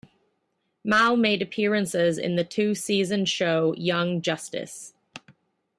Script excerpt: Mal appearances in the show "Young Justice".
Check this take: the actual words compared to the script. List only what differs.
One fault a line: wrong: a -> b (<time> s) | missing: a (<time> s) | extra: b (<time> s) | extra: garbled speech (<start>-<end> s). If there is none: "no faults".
extra: made (1.1 s)
extra: two season (2.4 s)